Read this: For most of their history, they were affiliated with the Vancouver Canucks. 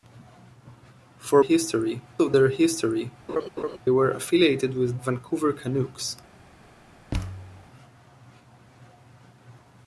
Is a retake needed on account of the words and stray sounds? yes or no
yes